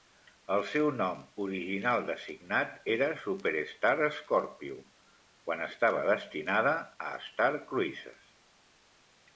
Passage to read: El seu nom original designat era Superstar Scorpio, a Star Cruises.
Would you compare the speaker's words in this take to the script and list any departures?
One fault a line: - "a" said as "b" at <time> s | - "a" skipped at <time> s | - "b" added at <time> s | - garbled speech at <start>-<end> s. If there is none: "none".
- "quan estava destinada" added at 5.5 s